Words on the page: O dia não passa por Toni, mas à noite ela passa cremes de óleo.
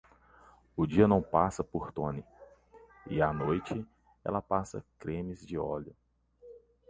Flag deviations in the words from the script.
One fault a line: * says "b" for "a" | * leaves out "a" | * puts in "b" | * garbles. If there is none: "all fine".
* says "e" for "mas"